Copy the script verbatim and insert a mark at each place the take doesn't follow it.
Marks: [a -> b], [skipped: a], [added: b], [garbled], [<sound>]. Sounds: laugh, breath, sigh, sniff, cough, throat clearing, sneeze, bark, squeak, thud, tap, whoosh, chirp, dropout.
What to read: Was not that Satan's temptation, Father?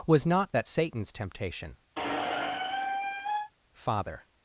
Was not that Satan's temptation, [squeak] Father?